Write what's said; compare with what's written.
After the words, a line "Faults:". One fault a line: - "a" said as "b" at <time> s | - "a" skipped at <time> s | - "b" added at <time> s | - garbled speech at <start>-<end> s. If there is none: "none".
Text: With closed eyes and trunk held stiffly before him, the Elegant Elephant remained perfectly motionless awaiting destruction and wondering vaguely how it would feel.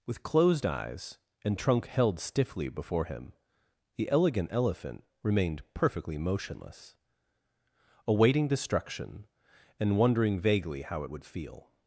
With closed eyes and trunk held stiffly before him, the Elegant Elephant remained perfectly motionless awaiting destruction and wondering vaguely how it would feel.
Faults:
none